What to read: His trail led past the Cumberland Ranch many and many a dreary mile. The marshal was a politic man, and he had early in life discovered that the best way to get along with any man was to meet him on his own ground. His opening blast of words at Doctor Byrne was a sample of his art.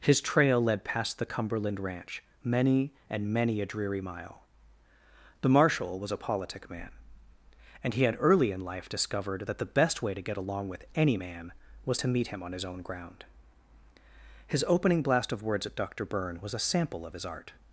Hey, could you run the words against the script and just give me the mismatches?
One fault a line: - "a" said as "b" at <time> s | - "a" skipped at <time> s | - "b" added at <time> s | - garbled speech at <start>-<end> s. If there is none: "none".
none